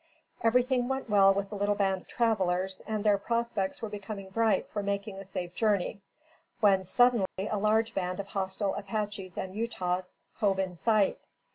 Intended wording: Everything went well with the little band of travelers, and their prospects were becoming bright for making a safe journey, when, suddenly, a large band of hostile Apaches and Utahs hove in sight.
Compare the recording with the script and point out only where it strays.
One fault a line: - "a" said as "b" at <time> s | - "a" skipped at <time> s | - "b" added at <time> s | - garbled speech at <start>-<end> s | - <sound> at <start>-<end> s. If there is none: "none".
- dropout at 7.3-7.4 s